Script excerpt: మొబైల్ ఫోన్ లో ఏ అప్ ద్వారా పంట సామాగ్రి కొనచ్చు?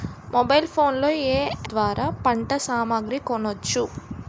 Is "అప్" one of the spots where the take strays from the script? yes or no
yes